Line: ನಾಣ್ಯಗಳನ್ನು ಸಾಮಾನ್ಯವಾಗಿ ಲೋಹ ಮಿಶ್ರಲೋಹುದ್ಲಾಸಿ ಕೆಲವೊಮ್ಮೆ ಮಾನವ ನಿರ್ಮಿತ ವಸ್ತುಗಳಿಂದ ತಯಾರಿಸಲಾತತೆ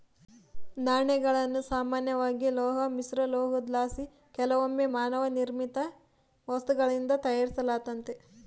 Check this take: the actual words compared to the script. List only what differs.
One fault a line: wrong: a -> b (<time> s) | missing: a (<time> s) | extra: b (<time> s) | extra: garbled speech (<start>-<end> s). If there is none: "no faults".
no faults